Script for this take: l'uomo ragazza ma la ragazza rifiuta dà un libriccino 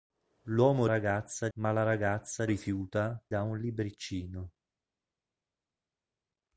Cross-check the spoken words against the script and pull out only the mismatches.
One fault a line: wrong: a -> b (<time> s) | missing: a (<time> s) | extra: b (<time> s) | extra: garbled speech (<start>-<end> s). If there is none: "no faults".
no faults